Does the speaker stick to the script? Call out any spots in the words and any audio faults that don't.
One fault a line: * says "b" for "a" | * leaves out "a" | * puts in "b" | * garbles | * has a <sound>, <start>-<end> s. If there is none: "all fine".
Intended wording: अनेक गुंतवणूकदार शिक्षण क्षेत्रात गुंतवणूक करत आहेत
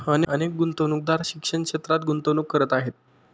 all fine